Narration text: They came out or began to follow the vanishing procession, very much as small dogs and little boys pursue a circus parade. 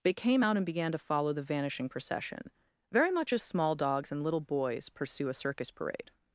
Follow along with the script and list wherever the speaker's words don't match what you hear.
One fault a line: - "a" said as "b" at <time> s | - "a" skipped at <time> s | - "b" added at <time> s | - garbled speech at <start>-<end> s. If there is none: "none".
- "or" said as "and" at 0.6 s